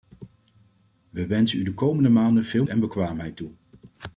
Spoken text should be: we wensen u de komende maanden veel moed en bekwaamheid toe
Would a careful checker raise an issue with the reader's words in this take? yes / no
yes